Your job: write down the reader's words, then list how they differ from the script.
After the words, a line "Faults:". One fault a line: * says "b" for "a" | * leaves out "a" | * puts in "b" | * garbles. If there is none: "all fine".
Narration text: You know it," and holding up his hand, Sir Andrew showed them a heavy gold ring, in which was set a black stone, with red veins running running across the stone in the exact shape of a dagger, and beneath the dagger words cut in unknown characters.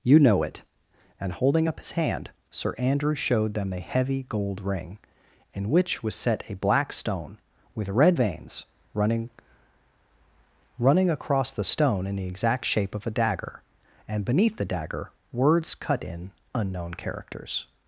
You know it," and holding up his hand, Sir Andrew showed them a heavy gold ring, in which was set a black stone, with red veins running running across the stone in the exact shape of a dagger, and beneath the dagger words cut in unknown characters.
Faults:
all fine